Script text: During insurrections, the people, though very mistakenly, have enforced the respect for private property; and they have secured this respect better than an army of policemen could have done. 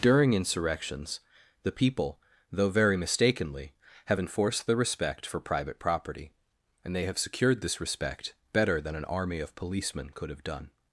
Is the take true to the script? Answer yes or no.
yes